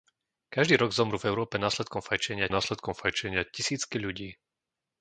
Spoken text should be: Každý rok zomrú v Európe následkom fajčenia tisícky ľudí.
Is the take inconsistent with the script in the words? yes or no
yes